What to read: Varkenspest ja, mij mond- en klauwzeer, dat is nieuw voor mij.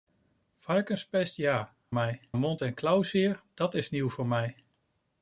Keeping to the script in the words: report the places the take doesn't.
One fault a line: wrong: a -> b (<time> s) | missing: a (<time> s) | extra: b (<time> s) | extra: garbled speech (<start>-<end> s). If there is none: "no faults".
no faults